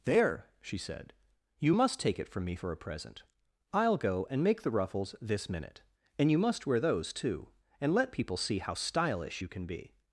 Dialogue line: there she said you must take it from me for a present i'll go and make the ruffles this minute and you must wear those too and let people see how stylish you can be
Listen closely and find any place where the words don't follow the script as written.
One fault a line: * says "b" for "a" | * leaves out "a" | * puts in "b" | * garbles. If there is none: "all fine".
all fine